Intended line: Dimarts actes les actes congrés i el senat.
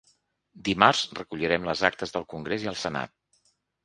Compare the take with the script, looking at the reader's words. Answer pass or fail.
fail